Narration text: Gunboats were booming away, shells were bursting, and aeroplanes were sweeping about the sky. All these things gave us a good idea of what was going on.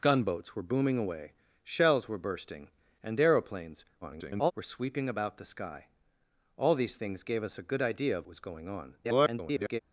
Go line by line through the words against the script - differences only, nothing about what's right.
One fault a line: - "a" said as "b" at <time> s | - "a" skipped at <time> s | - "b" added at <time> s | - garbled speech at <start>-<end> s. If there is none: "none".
- garbled speech at 4.0-4.5 s
- "what" skipped at 8.3 s
- garbled speech at 9.0-9.8 s